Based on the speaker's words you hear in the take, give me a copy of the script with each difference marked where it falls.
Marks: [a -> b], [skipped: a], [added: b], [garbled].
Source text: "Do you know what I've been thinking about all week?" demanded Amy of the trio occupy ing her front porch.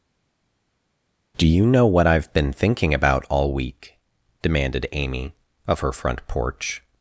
"Do you know what I've been thinking about all week?" demanded Amy of [skipped: the trio occupy ing] her front porch.